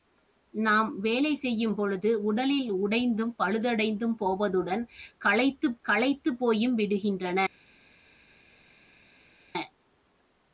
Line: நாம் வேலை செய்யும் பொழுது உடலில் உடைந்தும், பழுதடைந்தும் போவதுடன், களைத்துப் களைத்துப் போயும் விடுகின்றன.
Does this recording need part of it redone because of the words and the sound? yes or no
no